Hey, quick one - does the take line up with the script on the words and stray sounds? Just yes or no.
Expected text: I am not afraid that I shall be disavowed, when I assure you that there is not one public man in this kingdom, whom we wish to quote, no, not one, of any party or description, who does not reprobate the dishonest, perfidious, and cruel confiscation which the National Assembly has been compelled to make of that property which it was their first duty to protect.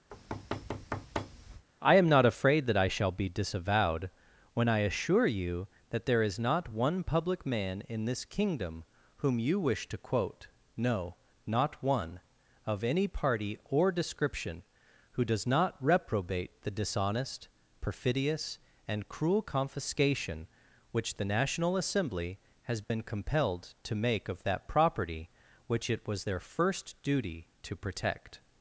no